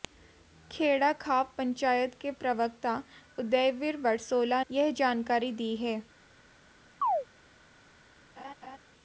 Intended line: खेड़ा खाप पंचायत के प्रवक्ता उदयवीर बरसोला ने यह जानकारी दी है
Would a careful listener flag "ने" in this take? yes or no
yes